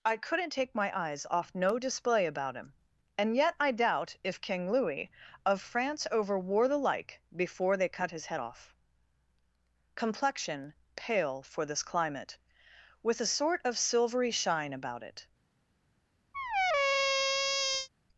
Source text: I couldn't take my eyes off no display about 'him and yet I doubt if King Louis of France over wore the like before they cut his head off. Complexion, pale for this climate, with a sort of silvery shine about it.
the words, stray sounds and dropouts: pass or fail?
fail